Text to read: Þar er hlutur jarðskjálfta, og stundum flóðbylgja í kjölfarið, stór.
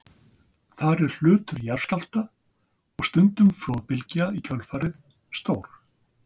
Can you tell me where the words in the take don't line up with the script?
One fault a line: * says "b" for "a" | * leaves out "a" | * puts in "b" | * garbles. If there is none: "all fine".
all fine